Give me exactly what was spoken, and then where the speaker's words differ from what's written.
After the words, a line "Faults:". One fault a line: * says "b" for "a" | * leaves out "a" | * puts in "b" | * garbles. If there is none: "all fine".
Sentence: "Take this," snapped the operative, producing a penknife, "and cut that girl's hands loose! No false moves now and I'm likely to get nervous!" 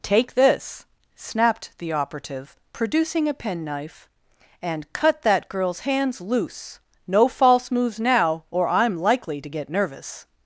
"Take this," snapped the operative, producing a penknife, "and cut that girl's hands loose! No false moves now or I'm likely to get nervous!"
Faults:
* says "or" for "and"